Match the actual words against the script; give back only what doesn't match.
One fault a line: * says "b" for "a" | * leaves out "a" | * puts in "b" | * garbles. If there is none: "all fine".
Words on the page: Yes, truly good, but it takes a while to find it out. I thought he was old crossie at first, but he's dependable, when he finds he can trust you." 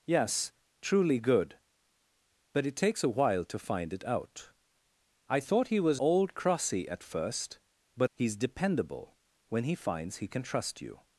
all fine